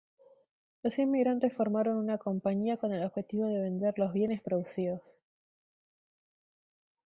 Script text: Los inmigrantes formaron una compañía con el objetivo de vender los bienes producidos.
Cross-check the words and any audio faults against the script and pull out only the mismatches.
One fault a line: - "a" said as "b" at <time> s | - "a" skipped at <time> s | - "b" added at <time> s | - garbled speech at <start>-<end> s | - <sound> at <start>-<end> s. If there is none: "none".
none